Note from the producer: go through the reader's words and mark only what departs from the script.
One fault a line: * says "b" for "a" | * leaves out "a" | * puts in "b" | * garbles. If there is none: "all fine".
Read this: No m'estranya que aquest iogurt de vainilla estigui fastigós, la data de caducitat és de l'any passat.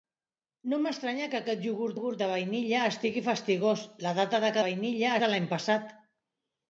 * puts in "iogurt"
* says "vainilla" for "caducitat"